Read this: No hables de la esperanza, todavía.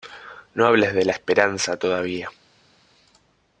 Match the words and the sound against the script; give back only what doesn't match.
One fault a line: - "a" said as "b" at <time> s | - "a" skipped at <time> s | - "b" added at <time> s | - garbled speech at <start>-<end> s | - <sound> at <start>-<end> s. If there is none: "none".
none